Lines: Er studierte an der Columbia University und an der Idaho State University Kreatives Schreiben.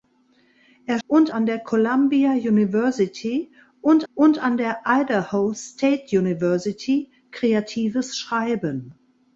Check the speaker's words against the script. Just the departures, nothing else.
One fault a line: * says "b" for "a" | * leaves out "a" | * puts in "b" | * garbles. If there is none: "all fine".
* says "und" for "studierte"
* puts in "und"